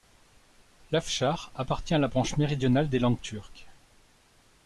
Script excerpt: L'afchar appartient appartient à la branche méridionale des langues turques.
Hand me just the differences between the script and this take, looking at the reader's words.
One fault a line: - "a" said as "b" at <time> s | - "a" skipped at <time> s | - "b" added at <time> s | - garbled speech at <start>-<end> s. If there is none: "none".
- "appartient" skipped at 1.9 s